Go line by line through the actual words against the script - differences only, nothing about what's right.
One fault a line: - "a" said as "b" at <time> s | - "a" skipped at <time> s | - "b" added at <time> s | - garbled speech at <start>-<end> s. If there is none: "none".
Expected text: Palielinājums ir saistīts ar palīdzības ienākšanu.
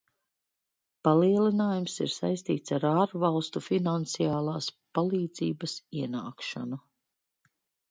- "ārvalstu finansiālās" added at 2.9 s